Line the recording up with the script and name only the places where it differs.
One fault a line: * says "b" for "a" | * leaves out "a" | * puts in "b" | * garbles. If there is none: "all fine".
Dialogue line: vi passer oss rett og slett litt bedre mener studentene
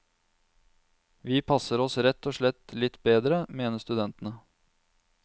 all fine